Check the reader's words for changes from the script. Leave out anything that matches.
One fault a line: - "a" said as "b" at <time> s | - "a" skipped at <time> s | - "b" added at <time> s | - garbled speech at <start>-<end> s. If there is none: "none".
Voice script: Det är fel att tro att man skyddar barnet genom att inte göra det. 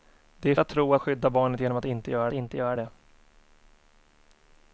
- "fel" skipped at 0.6 s
- "man" skipped at 1.0 s
- "inte göra" added at 2.3 s